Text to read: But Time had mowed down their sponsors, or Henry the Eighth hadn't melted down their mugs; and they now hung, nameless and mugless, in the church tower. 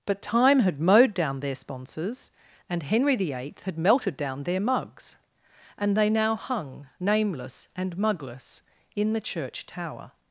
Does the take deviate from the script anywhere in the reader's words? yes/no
yes